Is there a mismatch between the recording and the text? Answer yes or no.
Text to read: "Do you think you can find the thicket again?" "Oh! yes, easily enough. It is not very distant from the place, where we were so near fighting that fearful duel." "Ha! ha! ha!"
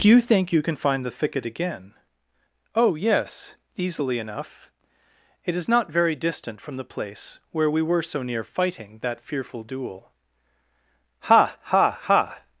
no